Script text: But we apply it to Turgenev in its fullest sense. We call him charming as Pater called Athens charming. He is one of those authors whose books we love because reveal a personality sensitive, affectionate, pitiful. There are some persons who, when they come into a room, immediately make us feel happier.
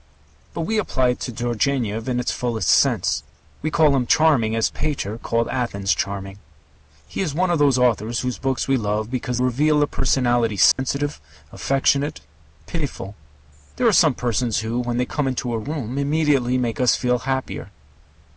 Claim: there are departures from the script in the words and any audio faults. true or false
true